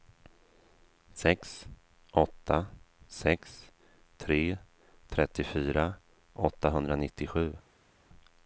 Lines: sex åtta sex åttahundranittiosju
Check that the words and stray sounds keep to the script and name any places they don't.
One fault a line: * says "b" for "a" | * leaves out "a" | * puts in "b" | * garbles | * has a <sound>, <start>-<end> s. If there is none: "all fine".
* puts in "tre trettiofyra"